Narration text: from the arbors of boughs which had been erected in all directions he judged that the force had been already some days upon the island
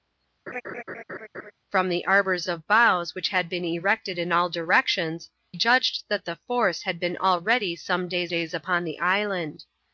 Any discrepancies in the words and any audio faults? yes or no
yes